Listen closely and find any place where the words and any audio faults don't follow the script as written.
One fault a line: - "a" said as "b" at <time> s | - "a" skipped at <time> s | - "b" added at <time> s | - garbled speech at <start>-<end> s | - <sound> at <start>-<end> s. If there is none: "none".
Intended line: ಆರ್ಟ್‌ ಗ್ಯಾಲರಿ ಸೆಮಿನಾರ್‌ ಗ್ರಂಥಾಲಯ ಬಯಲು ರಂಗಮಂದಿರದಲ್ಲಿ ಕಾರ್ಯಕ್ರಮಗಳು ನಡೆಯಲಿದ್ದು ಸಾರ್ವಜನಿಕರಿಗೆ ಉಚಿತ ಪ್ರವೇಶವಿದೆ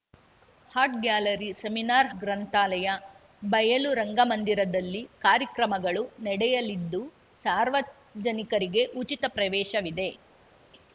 none